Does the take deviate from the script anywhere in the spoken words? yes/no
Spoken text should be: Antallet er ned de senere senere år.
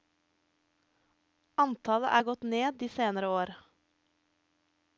yes